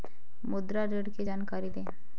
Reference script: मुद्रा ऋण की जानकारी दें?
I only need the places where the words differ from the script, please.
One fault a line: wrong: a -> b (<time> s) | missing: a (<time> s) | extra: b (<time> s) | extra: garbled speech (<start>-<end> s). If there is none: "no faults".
no faults